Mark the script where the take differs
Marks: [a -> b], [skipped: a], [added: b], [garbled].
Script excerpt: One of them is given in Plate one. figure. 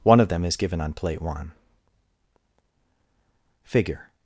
One of them is given [in -> on] Plate one. figure.